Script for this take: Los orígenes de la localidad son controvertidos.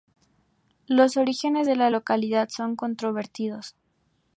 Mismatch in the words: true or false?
false